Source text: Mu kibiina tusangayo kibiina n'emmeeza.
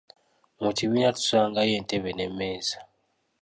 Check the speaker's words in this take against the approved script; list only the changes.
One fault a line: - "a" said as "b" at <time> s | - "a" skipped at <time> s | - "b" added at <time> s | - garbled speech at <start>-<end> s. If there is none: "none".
- "kibiina" said as "entebe" at 1.8 s